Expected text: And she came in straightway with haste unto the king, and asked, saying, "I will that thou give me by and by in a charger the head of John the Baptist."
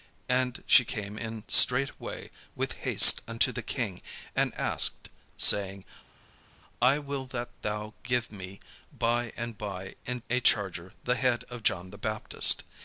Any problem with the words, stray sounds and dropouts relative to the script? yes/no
no